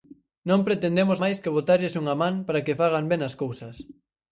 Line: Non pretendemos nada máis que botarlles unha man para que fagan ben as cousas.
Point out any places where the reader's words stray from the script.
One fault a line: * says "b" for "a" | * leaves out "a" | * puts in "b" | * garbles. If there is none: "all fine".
* leaves out "nada"